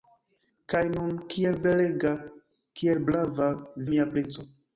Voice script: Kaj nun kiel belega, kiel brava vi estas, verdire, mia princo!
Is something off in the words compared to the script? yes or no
yes